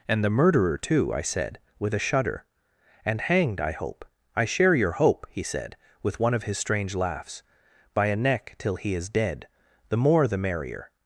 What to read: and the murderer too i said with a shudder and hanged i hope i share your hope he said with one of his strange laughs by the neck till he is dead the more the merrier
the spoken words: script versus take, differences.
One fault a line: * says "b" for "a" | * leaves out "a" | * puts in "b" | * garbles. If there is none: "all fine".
* says "a" for "the"